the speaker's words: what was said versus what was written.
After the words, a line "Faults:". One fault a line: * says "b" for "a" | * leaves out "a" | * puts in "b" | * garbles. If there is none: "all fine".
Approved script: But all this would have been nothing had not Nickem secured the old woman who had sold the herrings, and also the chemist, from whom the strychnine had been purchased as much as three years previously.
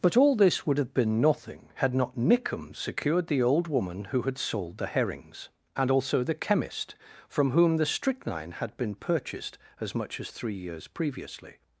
But all this would have been nothing had not Nickem secured the old woman who had sold the herrings, and also the chemist, from whom the strychnine had been purchased as much as three years previously.
Faults:
all fine